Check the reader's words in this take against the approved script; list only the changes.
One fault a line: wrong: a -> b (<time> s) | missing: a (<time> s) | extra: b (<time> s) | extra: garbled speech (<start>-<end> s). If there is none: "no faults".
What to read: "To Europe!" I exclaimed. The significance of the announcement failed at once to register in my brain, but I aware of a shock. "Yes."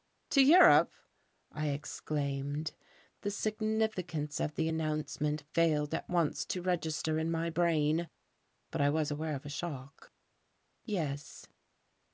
extra: was (8.9 s)